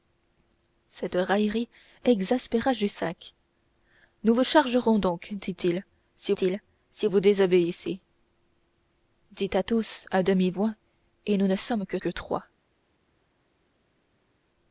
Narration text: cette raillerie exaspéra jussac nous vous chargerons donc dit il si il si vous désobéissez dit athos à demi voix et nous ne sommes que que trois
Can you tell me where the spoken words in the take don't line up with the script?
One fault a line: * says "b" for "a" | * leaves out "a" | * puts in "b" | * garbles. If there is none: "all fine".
all fine